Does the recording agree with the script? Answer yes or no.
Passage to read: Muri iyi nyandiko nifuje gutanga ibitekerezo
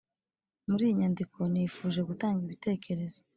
yes